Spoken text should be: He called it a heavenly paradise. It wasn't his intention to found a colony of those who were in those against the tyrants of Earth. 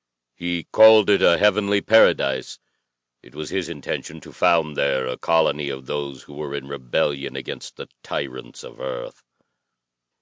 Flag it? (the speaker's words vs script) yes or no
yes